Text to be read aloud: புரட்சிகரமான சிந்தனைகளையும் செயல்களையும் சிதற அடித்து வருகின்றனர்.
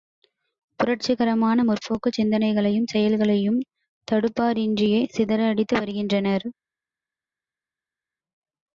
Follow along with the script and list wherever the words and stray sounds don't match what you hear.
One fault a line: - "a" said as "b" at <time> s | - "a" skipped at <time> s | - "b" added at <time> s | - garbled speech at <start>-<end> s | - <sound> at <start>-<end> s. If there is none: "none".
- "முற்போக்குச்" added at 1.6 s
- "தடுப்பாரின்றியே" added at 4.1 s